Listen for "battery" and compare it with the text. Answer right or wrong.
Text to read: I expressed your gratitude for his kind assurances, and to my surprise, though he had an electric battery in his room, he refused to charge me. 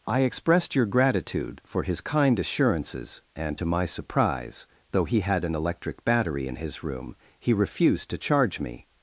right